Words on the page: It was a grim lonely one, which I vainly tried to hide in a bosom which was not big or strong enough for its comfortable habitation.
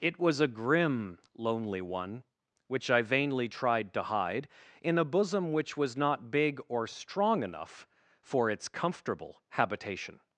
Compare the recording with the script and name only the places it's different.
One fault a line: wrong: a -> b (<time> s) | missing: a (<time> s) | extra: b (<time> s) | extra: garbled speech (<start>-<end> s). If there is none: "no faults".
no faults